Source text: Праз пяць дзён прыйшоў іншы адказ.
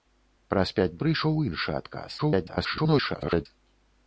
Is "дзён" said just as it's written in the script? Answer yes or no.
no